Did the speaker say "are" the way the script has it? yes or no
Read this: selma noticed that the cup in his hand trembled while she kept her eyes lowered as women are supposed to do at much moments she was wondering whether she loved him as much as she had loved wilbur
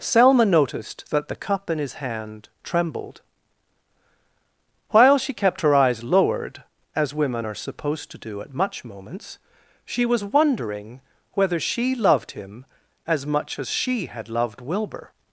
yes